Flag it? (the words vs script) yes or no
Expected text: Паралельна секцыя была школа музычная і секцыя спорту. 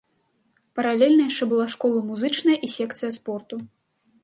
yes